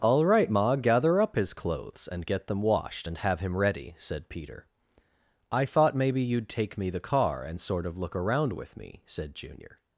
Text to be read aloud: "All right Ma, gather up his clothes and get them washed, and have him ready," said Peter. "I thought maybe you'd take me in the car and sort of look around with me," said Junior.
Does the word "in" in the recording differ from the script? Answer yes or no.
yes